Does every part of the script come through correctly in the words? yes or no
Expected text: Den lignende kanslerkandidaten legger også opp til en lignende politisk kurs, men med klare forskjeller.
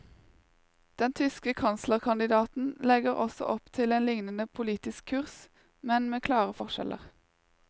no